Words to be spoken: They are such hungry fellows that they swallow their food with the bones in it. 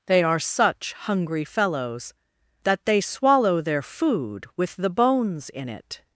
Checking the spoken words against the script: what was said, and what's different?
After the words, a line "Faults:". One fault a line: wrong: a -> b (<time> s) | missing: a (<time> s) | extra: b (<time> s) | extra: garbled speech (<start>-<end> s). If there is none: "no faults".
They are such hungry fellows that they swallow their food with the bones in it.
Faults:
no faults